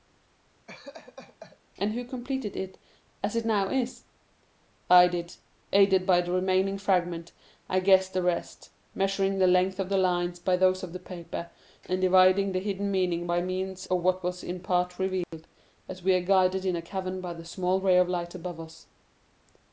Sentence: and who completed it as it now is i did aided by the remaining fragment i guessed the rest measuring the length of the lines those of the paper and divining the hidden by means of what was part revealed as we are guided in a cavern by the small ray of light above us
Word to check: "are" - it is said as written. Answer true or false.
true